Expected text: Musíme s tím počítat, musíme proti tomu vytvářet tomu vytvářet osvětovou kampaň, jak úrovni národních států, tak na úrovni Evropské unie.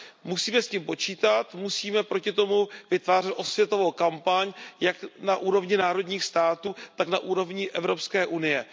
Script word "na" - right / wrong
right